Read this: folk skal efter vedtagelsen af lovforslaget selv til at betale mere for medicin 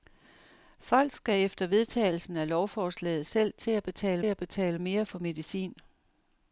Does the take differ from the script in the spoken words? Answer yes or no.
yes